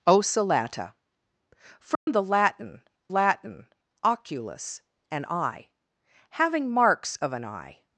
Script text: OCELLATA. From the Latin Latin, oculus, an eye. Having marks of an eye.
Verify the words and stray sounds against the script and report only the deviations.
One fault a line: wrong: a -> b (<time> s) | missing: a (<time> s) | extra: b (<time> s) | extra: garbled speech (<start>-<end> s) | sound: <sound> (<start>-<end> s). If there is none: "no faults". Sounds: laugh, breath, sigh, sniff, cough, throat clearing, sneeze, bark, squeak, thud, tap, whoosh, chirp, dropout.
sound: dropout (1.9-2.1 s)